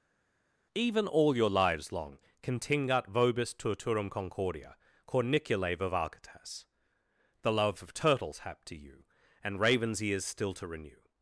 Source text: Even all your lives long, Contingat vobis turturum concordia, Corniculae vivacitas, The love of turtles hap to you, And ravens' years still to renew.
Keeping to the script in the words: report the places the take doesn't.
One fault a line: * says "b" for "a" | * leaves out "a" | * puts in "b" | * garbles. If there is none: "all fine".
* says "ears" for "years"